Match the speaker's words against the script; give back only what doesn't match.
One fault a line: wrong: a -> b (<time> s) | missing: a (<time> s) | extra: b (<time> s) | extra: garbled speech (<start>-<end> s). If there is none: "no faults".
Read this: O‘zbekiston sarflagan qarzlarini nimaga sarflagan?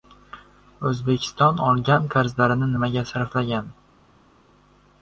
wrong: sarflagan -> olgan (1.7 s)